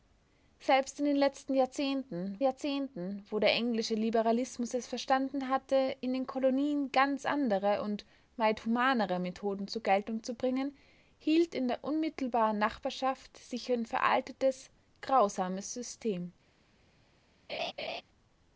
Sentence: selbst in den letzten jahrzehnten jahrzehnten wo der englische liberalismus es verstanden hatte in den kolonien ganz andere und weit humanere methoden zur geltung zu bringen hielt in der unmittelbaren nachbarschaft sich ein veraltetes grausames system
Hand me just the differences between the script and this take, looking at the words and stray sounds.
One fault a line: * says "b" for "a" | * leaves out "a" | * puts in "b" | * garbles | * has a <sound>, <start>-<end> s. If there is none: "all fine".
* has a laugh, 17.5-18.0 s